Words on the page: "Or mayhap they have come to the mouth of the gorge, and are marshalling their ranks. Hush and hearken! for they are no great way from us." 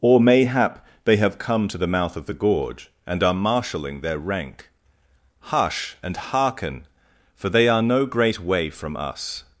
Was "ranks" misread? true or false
true